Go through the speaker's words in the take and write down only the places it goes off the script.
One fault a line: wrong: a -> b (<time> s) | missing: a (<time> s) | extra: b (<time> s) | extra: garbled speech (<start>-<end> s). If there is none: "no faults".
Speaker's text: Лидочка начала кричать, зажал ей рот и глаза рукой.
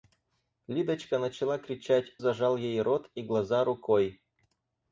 no faults